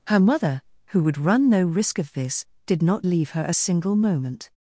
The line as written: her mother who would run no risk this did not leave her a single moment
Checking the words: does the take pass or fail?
fail